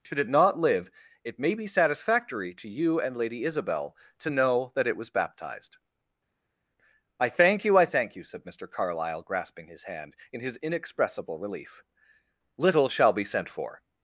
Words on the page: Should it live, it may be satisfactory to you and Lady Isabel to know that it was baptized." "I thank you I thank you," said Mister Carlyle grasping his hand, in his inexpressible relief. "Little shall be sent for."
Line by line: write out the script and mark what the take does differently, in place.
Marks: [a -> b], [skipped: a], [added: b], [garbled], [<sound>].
Should it [added: not] live, it may be satisfactory to you and Lady Isabel to know that it was baptized." "I thank you I thank you," said Mister Carlyle grasping his hand, in his inexpressible relief. "Little shall be sent for."